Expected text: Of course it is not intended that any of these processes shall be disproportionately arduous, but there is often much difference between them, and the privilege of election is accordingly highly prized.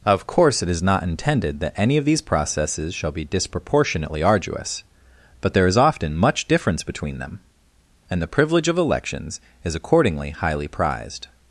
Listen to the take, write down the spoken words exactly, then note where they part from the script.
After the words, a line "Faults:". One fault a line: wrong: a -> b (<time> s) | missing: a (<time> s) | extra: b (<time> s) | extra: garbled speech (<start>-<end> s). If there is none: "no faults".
Of course it is not intended that any of these processes shall be disproportionately arduous, but there is often much difference between them, and the privilege of elections is accordingly highly prized.
Faults:
wrong: election -> elections (8.8 s)